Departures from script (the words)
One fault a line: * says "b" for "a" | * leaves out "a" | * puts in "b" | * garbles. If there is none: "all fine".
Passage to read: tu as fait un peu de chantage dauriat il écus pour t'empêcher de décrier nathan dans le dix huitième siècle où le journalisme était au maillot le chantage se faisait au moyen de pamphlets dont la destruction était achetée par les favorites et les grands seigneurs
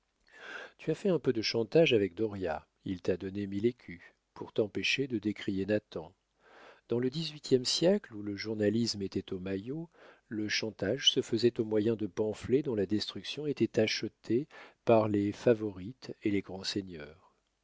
* puts in "avec"
* puts in "t'a donné mille"